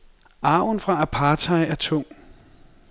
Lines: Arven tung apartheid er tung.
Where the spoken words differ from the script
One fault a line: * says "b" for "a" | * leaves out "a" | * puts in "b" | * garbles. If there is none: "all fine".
* says "fra" for "tung"